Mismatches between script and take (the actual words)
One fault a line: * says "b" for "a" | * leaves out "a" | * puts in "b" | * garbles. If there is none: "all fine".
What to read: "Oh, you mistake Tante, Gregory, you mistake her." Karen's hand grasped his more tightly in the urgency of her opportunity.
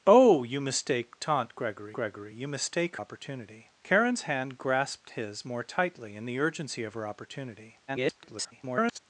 * puts in "Gregory"
* says "opportunity" for "her"
* garbles